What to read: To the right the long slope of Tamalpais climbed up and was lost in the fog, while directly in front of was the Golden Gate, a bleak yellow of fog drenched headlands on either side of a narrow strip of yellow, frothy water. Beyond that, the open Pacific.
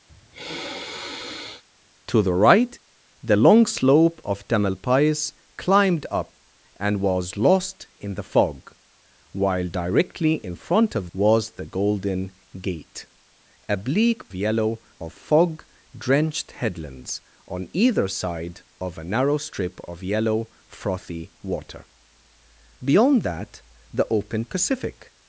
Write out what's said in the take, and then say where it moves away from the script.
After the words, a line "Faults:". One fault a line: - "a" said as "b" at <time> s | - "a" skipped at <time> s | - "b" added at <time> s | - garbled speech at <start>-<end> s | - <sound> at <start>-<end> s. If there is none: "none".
To the right the long slope of Tamalpais climbed up and was lost in the fog, while directly in front of was the Golden Gate, a bleak yellow of fog drenched headlands on either side of a narrow strip of yellow, frothy water. Beyond that, the open Pacific.
Faults:
- sniff at 0.1-1.6 s